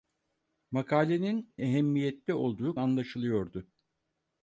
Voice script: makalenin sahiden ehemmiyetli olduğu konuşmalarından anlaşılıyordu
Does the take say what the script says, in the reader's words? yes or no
no